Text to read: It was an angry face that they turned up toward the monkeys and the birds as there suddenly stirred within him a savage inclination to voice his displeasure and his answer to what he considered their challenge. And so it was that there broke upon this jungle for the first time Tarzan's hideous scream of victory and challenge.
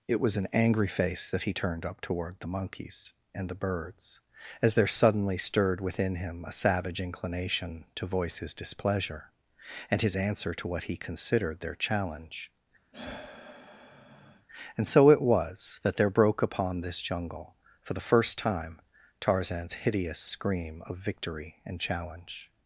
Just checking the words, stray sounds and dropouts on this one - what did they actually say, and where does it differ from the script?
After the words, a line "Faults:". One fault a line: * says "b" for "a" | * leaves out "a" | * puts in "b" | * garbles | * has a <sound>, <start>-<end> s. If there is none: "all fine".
It was an angry face that he turned up toward the monkeys and the birds as there suddenly stirred within him a savage inclination to voice his displeasure and his answer to what he considered their challenge. And so it was that there broke upon this jungle for the first time Tarzan's hideous scream of victory and challenge.
Faults:
* says "he" for "they"
* has a sigh, 12.9-14.5 s